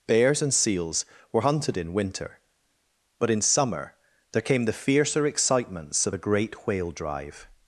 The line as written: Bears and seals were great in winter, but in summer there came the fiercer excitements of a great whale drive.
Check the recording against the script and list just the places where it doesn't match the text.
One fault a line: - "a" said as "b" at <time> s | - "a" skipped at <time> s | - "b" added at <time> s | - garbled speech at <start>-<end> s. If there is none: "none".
- "great" said as "hunted" at 1.4 s